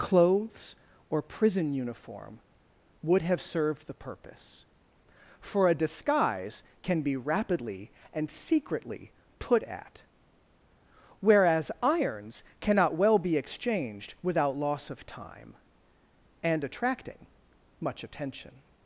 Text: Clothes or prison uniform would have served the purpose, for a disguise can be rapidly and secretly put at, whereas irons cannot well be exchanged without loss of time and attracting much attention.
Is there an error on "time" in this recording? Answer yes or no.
no